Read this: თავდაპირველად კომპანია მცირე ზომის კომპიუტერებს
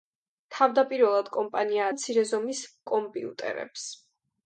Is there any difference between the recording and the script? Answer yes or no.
no